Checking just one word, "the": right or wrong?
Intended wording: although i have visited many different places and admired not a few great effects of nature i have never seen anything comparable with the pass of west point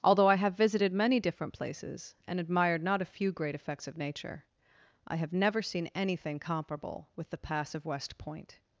right